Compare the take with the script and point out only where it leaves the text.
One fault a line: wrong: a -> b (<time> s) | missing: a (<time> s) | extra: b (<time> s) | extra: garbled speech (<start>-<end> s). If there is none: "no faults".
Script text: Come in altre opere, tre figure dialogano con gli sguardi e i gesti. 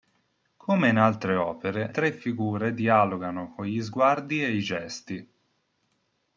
no faults